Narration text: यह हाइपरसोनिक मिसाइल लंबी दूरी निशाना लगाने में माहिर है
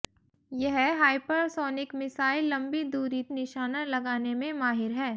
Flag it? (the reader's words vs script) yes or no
no